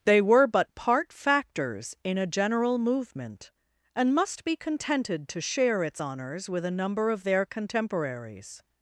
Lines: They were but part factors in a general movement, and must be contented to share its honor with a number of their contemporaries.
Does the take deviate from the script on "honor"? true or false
true